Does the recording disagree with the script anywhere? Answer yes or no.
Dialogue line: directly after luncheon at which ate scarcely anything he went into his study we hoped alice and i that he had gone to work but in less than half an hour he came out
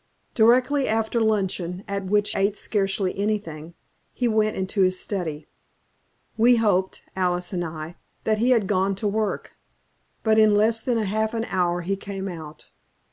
no